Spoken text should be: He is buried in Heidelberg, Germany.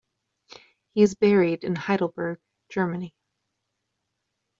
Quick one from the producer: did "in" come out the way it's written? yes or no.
yes